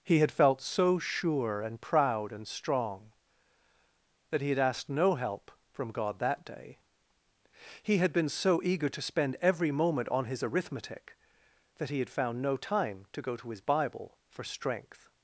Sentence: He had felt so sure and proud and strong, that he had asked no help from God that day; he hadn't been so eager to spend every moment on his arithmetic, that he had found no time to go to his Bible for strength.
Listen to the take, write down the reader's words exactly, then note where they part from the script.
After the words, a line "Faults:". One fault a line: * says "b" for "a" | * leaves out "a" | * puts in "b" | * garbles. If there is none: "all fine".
He had felt so sure and proud and strong, that he had asked no help from God that day; he had been so eager to spend every moment on his arithmetic, that he had found no time to go to his Bible for strength.
Faults:
* says "had" for "hadn't"